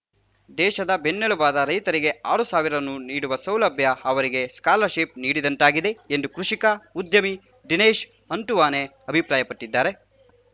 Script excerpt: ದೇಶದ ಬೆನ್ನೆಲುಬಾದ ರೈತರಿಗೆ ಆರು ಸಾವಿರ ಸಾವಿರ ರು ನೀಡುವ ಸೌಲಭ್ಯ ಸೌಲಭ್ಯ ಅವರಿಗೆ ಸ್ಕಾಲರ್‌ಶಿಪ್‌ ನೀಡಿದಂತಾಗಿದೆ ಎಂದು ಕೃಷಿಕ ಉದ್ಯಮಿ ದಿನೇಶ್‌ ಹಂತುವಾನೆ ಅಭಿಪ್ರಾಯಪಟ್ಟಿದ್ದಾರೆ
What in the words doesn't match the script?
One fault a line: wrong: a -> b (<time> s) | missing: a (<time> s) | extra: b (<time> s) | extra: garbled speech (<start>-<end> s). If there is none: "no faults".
missing: ಸಾವಿರ (2.8 s)
missing: ಸೌಲಭ್ಯ (3.9 s)